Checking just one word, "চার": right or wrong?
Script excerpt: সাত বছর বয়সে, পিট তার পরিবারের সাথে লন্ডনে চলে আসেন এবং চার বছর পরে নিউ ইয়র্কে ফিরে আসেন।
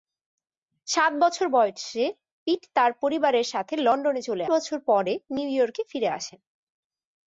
wrong